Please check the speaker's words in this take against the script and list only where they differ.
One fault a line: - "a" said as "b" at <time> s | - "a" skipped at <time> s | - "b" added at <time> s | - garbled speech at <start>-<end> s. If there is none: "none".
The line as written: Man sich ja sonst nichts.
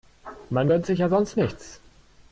- "gönnt" added at 0.7 s